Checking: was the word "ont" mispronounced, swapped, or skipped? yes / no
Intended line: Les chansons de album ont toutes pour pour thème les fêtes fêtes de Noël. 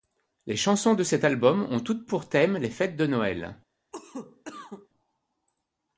no